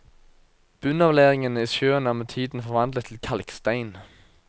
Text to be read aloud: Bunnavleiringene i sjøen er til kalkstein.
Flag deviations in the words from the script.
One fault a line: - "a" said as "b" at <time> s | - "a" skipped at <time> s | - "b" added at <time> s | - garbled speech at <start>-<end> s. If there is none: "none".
- "med tiden forvandlet" added at 2.1 s